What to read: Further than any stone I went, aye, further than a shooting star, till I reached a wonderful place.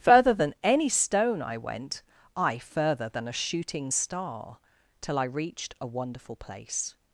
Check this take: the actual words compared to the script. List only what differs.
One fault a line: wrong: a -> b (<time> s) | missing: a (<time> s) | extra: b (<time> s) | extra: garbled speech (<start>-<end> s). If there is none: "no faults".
no faults